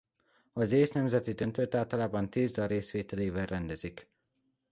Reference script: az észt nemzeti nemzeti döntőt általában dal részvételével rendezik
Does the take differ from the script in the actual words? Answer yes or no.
yes